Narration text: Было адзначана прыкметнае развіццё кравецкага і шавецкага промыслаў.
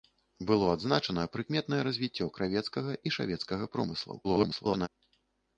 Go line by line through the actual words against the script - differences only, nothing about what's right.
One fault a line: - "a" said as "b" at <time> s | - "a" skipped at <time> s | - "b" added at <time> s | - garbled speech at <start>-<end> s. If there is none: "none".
- garbled speech at 4.2-4.9 s